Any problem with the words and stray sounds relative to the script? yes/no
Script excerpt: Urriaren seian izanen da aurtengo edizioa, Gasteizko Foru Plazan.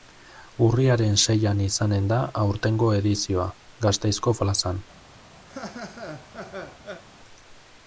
yes